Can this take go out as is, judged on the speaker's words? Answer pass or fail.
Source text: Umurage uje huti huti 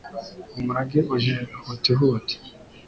pass